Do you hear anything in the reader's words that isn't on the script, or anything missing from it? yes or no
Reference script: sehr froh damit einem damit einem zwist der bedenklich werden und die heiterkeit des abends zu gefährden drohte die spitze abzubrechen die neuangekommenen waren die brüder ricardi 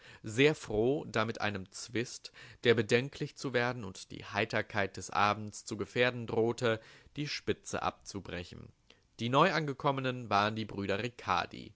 yes